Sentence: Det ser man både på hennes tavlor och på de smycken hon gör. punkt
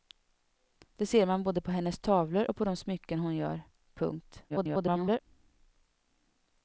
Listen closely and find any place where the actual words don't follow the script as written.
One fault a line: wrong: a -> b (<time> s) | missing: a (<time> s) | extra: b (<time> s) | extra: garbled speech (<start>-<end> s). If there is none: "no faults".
extra: garbled speech (4.5-5.2 s)